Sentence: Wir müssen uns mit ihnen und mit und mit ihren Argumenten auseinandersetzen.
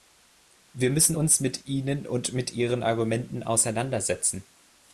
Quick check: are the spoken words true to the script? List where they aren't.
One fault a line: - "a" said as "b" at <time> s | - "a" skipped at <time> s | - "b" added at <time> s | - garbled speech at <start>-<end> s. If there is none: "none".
- "und mit" skipped at 2.5 s